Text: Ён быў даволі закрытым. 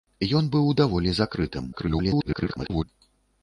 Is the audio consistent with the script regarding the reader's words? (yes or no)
no